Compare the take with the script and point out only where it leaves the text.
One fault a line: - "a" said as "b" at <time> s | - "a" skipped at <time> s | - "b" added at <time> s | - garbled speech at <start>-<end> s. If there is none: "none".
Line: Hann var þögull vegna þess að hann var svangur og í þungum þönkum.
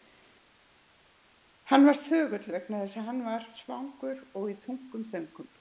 none